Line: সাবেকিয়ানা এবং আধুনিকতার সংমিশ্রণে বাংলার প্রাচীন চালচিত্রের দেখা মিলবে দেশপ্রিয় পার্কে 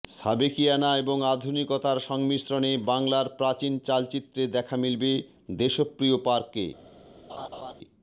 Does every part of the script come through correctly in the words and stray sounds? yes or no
no